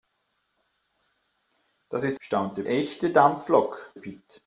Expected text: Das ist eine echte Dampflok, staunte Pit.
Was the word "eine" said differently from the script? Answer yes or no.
yes